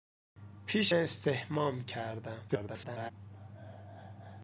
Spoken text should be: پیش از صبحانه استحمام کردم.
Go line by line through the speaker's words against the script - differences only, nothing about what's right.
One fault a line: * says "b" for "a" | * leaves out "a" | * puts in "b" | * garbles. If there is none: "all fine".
* leaves out "از صبحانه"
* garbles